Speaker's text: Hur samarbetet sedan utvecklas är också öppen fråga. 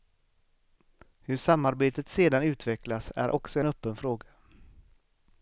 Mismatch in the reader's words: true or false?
false